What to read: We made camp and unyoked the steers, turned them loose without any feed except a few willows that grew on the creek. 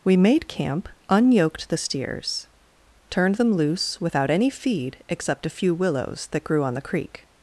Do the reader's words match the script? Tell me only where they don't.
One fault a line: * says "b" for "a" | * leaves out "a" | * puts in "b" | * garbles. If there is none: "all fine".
* leaves out "and"